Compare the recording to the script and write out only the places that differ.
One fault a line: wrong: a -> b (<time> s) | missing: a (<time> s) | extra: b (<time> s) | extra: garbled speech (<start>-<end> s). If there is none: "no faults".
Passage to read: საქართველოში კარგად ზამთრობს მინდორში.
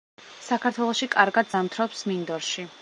no faults